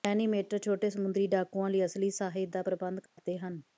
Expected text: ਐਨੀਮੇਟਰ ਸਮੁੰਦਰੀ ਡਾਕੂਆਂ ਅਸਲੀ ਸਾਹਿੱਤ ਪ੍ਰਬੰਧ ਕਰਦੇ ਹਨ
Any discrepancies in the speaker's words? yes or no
yes